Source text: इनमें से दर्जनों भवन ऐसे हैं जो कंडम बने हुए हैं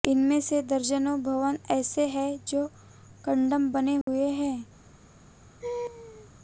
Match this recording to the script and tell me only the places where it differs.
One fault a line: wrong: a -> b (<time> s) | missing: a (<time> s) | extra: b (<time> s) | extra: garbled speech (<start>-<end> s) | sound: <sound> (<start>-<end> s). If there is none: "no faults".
sound: dropout (4.0-4.1 s)
sound: laugh (5.6-6.3 s)